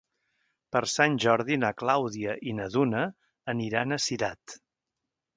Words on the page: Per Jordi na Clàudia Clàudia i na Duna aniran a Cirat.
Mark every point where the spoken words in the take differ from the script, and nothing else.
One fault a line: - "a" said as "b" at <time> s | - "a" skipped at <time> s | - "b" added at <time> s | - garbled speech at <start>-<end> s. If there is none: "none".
- "Sant" added at 0.9 s
- "Clàudia" skipped at 2.4 s